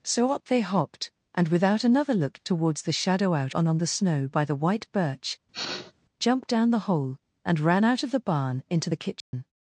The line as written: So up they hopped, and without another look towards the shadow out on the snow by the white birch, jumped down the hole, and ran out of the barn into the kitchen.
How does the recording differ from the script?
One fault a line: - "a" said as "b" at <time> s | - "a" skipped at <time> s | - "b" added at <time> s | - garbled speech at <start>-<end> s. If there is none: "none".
- "on" added at 3.7 s